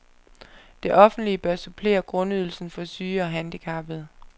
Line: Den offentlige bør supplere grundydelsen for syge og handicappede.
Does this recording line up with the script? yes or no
no